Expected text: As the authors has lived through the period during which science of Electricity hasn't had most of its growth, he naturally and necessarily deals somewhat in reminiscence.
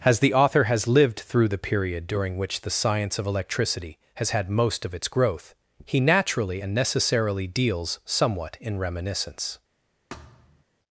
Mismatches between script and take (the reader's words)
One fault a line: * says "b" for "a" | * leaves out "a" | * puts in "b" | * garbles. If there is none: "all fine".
* says "author" for "authors"
* puts in "the"
* says "has" for "hasn't"